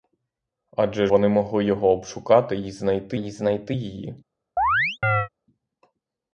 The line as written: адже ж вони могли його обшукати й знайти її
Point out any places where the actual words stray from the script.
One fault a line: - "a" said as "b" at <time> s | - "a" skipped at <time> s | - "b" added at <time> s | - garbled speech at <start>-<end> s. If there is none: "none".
- "ж" skipped at 1.1 s
- "й знайти" added at 3.2 s